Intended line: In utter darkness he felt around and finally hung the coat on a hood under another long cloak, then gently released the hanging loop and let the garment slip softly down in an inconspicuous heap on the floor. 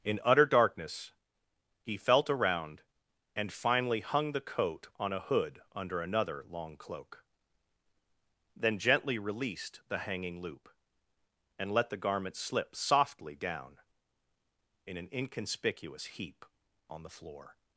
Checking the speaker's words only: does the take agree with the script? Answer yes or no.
yes